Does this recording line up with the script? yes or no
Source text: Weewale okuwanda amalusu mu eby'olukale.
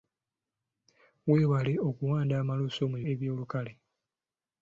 yes